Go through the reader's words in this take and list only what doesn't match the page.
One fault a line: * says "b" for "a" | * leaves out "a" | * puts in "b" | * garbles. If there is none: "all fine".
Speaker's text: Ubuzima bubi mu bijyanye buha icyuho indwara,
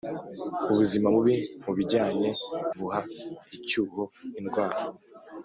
all fine